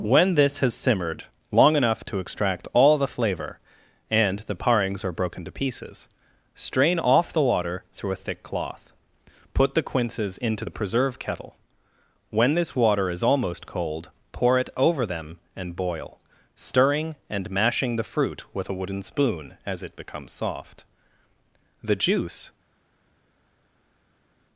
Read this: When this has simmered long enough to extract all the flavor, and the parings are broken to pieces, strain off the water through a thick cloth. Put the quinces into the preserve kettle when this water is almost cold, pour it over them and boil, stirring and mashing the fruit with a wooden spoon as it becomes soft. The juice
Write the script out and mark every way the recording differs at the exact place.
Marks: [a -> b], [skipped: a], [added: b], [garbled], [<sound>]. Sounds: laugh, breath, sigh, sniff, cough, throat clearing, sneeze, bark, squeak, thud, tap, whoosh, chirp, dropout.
When this has simmered long enough to extract all the flavor, and the parings are broken to pieces, strain off the water through a thick cloth. Put the quinces into the preserve kettle when this water is almost cold, pour it over them and boil, stirring and mashing the fruit with a wooden spoon as it becomes soft. The juice